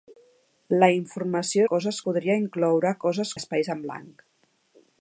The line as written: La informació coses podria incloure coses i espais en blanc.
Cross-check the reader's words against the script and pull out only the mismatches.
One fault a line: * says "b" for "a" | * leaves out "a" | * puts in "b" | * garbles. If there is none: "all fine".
all fine